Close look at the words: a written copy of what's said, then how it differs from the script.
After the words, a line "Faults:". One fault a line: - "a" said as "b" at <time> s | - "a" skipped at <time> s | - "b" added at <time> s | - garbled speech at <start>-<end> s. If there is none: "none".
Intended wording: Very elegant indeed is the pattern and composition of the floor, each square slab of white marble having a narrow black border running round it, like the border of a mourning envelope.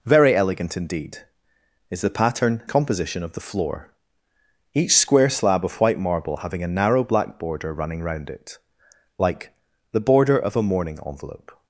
Very elegant indeed is the pattern composition of the floor, each square slab of white marble having a narrow black border running round it, like the border of a mourning envelope.
Faults:
- "and" skipped at 2.6 s